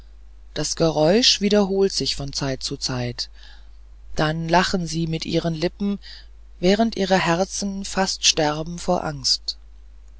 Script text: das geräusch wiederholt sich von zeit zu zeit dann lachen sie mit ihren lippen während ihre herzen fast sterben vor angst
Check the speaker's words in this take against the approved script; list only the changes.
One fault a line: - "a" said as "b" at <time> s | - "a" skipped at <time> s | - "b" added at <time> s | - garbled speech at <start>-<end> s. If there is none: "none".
none